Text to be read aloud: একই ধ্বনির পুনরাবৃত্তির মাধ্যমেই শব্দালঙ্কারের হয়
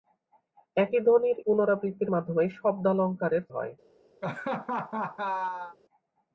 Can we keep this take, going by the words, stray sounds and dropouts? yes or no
no